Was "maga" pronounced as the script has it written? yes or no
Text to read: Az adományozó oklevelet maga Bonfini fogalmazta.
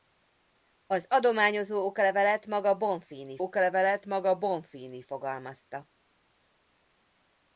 yes